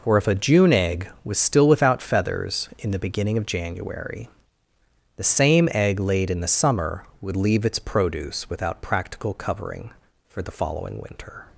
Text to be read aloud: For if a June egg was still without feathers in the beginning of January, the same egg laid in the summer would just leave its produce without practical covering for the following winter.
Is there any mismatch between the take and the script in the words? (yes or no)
yes